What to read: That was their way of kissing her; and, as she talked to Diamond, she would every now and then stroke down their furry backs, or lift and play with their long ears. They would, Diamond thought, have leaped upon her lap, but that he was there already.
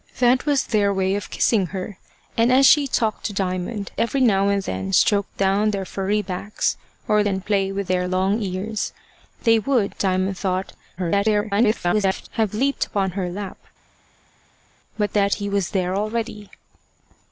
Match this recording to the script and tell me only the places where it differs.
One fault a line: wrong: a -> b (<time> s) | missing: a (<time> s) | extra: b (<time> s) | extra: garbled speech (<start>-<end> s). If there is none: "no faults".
missing: she would (3.9 s)
missing: lift (7.2 s)
extra: garbled speech (11.0-12.3 s)